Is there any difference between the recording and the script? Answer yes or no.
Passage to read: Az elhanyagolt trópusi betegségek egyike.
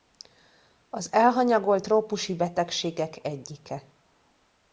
no